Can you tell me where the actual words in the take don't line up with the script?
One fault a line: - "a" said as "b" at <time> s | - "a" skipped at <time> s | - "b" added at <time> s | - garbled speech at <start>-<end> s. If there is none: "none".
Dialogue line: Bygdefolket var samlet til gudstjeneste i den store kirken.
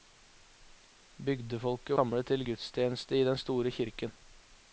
- "var" skipped at 2.0 s